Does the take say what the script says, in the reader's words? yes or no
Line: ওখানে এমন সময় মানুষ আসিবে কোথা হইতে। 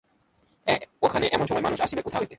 yes